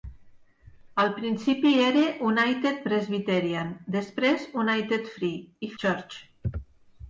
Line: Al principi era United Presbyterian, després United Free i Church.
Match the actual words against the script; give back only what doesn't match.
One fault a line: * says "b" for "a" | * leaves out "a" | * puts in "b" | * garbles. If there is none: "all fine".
all fine